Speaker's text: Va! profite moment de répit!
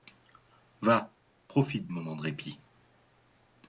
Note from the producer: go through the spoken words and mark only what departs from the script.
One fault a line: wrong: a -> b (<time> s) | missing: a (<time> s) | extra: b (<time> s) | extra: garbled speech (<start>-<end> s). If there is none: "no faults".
no faults